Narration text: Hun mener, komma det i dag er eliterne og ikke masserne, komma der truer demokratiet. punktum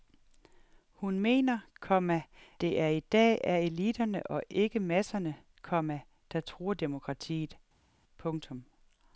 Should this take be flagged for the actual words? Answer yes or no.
no